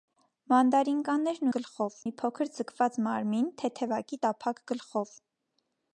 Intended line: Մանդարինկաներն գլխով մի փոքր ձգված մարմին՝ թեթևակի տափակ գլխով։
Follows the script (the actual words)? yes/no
yes